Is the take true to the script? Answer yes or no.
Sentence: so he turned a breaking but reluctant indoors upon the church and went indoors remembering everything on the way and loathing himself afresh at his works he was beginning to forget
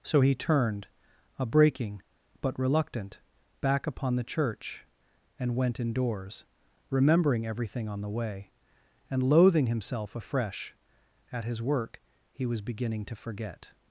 no